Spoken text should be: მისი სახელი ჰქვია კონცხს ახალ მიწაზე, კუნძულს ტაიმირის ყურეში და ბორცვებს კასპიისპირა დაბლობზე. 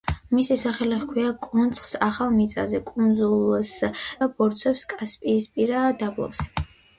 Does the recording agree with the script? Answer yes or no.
no